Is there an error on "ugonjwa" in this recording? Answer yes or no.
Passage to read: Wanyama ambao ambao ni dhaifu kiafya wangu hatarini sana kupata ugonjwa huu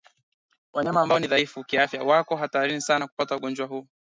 no